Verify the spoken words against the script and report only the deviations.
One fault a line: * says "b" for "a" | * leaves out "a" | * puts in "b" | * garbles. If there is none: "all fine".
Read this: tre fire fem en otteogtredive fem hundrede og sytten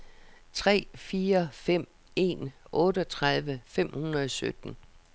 all fine